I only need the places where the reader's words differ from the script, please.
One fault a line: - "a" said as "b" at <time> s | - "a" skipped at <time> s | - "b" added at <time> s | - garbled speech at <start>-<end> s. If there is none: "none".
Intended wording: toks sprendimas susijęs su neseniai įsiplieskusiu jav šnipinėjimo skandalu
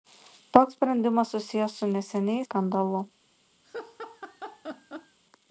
- "įsiplieskusiu jav šnipinėjimo" skipped at 2.5 s